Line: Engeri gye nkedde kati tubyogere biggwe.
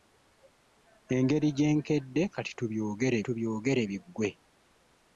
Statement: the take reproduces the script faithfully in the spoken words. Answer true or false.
false